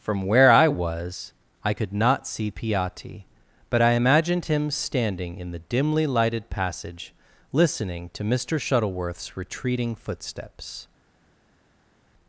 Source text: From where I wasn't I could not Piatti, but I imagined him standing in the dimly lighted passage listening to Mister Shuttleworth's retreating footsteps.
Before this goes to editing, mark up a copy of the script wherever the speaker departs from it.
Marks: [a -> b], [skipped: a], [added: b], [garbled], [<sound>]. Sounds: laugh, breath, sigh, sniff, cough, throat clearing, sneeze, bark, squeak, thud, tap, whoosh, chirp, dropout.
From where I [wasn't -> was] I could not [added: see] Piatti, but I imagined him standing in the dimly lighted passage listening to Mister Shuttleworth's retreating footsteps.